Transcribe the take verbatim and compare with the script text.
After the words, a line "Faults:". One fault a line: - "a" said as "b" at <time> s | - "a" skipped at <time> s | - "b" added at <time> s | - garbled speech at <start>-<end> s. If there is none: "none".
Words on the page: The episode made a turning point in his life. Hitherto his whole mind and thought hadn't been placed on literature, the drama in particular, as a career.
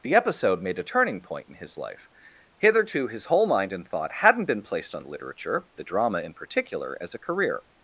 The episode made a turning point in his life. Hitherto his whole mind and thought hadn't been placed on literature, the drama in particular, as a career.
Faults:
none